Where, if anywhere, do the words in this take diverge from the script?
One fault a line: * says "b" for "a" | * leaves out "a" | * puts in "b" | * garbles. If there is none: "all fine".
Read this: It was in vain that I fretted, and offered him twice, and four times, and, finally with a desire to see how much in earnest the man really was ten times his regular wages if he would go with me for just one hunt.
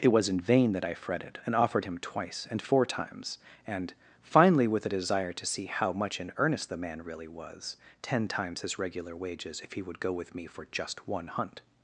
all fine